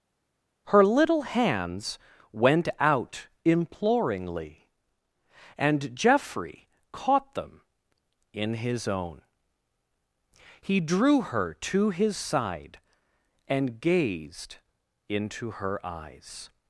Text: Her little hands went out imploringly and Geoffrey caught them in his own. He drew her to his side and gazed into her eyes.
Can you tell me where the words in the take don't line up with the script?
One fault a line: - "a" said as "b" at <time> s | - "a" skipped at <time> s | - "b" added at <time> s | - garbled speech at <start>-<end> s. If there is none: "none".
none